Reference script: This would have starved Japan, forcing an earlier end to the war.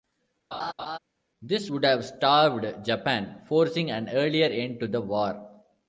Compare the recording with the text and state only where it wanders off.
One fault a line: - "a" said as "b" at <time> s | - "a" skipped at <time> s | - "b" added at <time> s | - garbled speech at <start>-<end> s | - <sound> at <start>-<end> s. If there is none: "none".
- laugh at 0.5-1.0 s